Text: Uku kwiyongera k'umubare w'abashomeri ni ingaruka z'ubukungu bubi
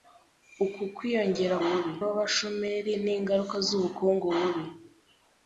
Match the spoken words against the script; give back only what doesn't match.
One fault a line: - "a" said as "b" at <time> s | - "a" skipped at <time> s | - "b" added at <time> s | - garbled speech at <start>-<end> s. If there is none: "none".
- "k'umubare" said as "bubi" at 1.7 s